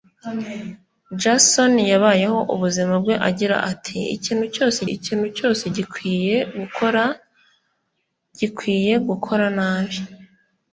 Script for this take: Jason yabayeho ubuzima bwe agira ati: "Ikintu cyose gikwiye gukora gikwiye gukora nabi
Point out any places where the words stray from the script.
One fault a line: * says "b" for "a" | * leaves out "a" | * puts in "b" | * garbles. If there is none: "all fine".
* puts in "ikintu cyose"